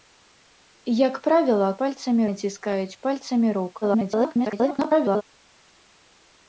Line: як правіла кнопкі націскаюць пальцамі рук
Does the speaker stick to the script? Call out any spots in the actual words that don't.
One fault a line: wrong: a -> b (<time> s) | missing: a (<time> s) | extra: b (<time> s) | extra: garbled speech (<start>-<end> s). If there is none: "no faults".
wrong: кнопкі -> пальцамі (1.8 s)
extra: garbled speech (3.8-5.2 s)